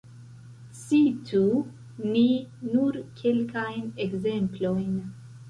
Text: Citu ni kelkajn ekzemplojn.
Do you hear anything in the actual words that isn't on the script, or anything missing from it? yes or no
yes